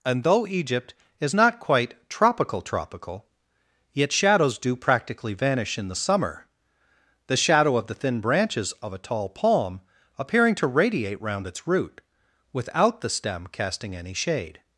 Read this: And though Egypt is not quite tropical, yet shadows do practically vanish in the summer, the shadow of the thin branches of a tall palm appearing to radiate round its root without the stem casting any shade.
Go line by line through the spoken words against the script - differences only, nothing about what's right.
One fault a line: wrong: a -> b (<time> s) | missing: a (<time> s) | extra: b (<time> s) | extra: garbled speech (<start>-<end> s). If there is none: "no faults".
extra: tropical (2.6 s)